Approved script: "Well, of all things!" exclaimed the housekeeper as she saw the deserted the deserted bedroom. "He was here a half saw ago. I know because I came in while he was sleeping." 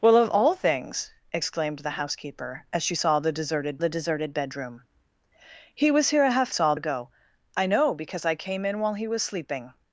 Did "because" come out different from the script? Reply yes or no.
no